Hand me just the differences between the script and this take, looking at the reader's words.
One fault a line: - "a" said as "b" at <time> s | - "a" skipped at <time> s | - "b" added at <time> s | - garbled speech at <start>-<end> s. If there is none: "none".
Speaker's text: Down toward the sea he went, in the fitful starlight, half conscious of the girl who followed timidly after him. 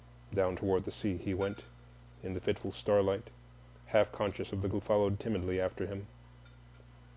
- "girl" skipped at 4.7 s